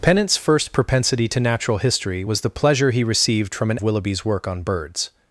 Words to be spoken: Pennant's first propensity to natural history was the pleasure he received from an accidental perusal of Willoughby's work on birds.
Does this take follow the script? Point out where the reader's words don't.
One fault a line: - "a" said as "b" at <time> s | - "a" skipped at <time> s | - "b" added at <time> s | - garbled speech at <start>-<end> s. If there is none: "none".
- "accidental perusal of" skipped at 3.8 s